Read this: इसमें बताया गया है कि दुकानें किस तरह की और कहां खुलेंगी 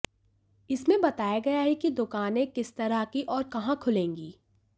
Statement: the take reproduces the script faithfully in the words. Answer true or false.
true